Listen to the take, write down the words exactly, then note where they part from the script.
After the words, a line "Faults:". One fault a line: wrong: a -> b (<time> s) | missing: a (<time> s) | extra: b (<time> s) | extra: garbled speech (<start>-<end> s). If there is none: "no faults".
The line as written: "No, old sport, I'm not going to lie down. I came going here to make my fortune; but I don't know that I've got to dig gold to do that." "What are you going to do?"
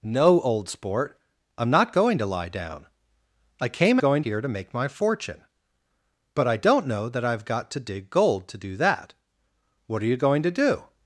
"No, old sport, I'm not going to lie down. I came going here to make my fortune; but I don't know that I've got to dig gold to do that." "What are you going to do?"
Faults:
no faults